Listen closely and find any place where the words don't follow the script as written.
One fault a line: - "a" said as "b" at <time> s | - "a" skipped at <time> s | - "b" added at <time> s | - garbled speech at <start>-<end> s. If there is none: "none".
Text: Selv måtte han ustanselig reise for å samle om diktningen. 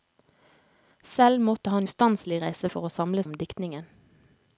none